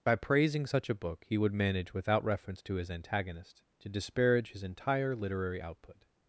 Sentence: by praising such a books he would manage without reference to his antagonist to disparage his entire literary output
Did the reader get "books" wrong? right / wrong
wrong